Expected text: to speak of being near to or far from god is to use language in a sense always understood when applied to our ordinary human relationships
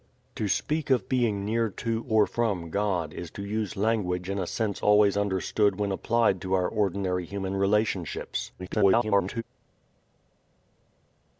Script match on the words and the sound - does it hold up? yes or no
no